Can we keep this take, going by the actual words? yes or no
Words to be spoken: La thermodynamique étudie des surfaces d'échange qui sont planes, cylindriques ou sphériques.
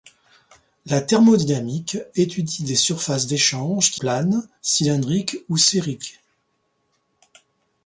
no